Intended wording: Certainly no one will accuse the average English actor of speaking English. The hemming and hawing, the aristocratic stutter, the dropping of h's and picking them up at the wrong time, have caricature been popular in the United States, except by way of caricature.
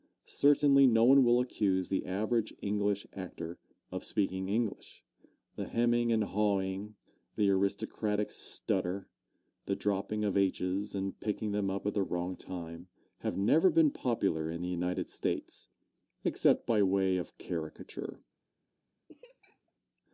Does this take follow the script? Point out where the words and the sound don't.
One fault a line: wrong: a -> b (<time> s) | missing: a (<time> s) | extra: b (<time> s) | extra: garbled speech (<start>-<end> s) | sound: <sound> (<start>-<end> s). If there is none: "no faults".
wrong: caricature -> never (13.4 s)
sound: laugh (19.1-19.7 s)